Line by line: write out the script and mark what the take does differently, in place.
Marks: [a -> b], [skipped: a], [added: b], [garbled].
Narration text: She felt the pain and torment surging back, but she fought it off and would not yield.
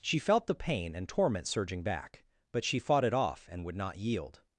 She felt the pain and torment surging back, but she fought it off and would not yield.